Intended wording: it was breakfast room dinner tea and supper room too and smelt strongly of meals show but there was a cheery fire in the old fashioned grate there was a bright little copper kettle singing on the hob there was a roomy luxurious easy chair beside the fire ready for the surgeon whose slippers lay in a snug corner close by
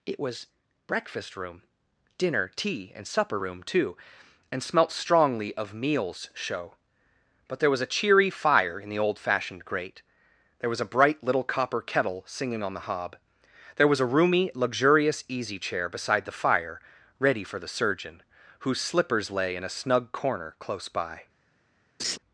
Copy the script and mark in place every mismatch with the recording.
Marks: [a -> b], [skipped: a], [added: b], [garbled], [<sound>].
it was breakfast room dinner tea and supper room too and smelt strongly of meals show but there was a cheery fire in the old fashioned grate there was a bright little copper kettle singing on the hob there was a roomy luxurious easy chair beside the fire ready for the surgeon whose slippers lay in a snug corner close by [laugh]